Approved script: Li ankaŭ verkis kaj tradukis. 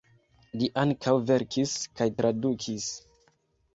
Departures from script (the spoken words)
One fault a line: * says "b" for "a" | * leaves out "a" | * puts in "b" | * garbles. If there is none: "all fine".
all fine